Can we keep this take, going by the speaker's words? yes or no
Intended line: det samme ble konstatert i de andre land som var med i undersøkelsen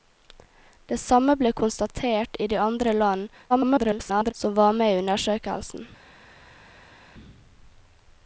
no